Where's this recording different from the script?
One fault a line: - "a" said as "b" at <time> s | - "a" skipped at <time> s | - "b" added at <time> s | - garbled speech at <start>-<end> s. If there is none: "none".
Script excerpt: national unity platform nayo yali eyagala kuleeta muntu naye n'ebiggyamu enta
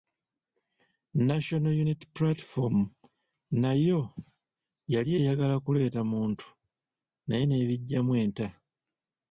none